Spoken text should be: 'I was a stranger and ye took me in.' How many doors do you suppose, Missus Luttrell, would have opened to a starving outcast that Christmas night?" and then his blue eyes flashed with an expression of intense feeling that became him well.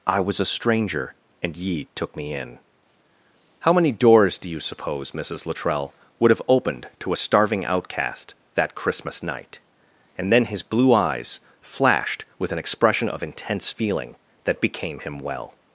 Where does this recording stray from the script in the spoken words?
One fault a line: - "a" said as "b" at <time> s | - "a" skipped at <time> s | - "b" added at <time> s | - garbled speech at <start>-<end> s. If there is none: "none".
none